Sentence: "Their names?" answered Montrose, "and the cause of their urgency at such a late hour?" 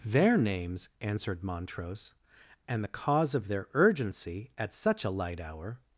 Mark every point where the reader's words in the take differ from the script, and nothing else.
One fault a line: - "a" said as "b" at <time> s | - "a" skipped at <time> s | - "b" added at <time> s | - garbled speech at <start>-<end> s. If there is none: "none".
- "late" said as "light" at 5.1 s